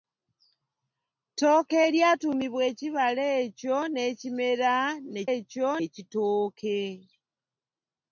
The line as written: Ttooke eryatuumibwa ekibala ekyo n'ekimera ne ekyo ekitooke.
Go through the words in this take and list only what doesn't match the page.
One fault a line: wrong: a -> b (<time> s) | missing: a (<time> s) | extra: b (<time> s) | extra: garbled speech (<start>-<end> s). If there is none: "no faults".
no faults